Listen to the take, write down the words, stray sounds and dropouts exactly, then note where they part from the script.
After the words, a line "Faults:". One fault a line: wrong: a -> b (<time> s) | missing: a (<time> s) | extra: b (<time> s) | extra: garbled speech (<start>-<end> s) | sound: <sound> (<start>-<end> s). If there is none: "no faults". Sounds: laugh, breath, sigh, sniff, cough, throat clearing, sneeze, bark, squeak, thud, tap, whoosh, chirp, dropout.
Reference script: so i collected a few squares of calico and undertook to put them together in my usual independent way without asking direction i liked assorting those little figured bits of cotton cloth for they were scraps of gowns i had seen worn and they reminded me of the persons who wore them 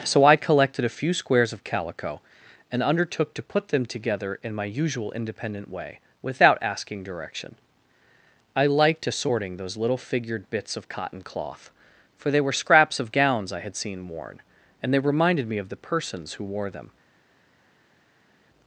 so i collected a few squares of calico and undertook to put them together in my usual independent way without asking direction i liked assorting those little figured bits of cotton cloth for they were scraps of gowns i had seen worn and they reminded me of the persons who wore them
Faults:
no faults